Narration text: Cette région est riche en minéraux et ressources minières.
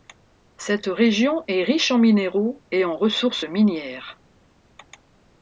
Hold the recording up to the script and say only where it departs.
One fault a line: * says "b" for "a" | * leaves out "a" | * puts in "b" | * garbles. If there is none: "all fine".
* puts in "en"